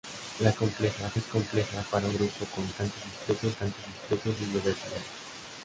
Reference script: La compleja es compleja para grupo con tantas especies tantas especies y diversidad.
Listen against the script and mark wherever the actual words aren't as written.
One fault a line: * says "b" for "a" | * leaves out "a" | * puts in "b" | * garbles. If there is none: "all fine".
all fine